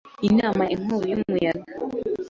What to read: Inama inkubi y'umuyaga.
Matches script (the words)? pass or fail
pass